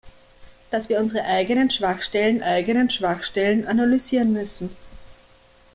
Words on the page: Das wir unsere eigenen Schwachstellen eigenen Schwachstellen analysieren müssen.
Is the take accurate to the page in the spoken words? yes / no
yes